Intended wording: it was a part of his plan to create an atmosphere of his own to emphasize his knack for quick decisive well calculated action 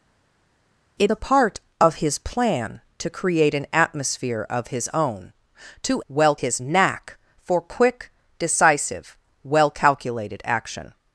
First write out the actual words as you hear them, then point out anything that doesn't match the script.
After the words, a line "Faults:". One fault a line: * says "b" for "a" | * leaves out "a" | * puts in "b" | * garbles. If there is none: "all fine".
it a part of his plan to create an atmosphere of his own to well his knack for quick decisive well calculated action
Faults:
* leaves out "was"
* says "well" for "emphasize"